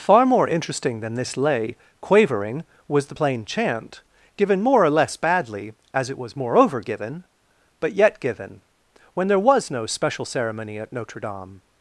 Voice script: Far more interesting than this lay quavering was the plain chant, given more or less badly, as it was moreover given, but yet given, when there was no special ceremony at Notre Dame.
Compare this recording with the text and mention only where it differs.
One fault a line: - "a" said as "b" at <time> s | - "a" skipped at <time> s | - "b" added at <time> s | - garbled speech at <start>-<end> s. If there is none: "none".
none